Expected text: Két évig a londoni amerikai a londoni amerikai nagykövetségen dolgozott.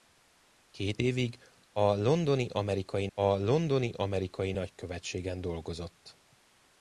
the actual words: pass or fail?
pass